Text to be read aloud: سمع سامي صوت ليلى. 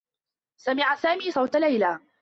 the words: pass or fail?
pass